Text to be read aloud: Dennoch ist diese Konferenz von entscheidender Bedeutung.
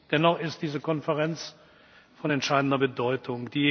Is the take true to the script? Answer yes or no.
yes